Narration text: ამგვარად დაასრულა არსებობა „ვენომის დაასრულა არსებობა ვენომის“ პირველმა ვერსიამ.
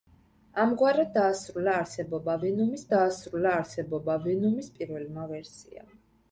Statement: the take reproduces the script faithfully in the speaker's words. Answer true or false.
true